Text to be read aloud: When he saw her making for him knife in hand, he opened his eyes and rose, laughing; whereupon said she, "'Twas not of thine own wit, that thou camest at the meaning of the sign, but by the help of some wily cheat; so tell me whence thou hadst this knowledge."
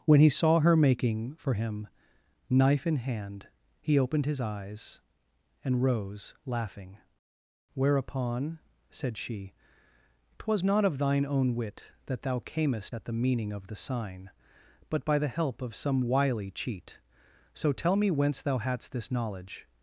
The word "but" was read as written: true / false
true